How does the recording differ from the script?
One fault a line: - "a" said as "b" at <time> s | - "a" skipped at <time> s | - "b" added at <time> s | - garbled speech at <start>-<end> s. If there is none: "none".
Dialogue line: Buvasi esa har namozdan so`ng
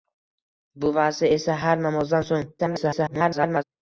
- garbled speech at 2.6-3.6 s